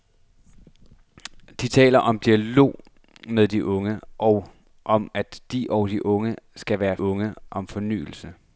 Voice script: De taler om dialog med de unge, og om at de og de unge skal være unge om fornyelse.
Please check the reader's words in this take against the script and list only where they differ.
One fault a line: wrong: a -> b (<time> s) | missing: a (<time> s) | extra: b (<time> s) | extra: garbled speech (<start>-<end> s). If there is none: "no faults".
no faults